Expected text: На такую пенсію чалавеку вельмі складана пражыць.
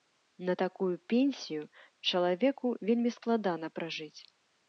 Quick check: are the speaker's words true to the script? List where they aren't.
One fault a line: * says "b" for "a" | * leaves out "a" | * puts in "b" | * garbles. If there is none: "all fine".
all fine